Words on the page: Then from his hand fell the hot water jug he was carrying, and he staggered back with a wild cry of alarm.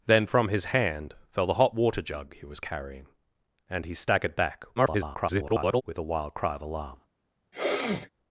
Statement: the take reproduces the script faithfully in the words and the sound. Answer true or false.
false